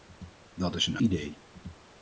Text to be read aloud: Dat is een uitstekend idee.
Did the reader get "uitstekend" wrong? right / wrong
wrong